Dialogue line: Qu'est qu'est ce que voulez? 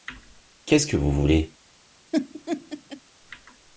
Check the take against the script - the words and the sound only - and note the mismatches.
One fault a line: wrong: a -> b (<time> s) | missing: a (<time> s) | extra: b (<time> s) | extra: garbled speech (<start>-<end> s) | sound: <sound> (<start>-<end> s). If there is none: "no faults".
missing: qu'est (0.8 s)
extra: vous (1.0 s)
sound: laugh (2.1-3.0 s)